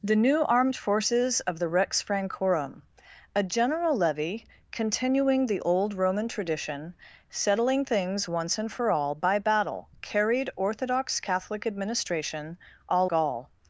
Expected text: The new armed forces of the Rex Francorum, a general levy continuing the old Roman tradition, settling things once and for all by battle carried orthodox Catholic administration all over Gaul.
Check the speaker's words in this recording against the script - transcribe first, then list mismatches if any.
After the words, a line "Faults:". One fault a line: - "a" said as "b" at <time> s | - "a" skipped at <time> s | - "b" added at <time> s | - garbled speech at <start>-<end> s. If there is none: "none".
The new armed forces of the Rex Francorum, a general levy continuing the old Roman tradition, settling things once and for all by battle carried orthodox Catholic administration all Gaul.
Faults:
- "over" skipped at 13.1 s